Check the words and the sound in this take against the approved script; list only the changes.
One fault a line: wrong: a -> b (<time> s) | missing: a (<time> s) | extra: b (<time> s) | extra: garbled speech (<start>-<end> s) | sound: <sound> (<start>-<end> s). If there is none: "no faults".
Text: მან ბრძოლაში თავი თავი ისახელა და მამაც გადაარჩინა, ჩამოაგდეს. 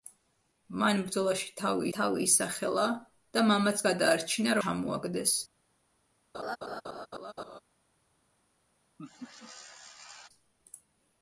sound: laugh (6.3-7.6 s)
sound: laugh (9.0-10.3 s)